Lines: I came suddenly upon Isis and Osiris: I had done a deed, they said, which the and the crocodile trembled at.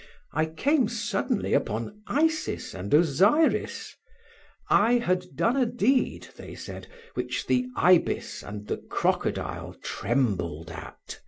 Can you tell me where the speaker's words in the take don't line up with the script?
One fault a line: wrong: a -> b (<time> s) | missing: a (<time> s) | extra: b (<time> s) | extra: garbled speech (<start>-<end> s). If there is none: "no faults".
extra: ibis (7.8 s)